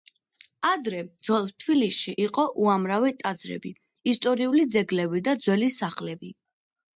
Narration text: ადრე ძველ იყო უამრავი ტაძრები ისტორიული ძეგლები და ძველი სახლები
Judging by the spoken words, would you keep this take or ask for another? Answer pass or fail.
fail